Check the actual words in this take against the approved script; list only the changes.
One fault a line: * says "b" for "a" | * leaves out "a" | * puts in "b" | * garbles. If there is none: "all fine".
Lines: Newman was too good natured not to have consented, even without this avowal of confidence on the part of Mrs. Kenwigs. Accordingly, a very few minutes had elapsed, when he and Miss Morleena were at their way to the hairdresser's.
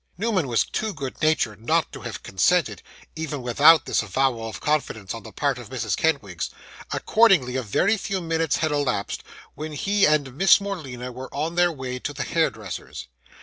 * says "on" for "at"